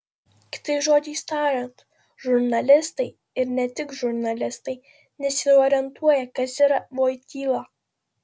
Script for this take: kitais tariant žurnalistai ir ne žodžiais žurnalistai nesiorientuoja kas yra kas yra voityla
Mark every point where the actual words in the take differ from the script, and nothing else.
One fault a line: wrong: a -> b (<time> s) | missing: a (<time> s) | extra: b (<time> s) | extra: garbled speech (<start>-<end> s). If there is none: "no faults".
extra: žodžiais (0.8 s)
wrong: žodžiais -> tik (3.8 s)
missing: kas yra (6.8 s)